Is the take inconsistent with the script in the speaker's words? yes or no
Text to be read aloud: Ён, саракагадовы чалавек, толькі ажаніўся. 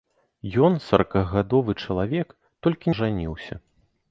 no